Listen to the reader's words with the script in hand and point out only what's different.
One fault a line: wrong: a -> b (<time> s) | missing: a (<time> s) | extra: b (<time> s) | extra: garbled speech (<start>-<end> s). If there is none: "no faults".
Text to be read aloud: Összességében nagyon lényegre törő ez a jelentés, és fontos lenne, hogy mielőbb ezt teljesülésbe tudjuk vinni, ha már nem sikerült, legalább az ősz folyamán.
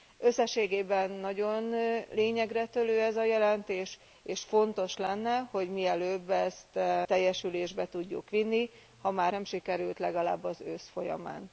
no faults